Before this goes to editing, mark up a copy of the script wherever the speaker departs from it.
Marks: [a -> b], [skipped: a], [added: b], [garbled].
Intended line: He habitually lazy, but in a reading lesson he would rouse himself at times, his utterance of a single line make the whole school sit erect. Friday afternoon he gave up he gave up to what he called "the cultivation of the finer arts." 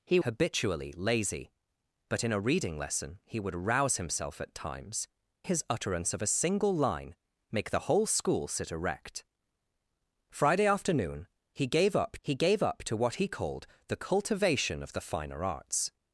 He habitually lazy, but in a reading lesson he would rouse himself at times, his utterance of a single line make the whole school sit erect. Friday afternoon he gave up he gave up to what he called "the cultivation of the finer arts."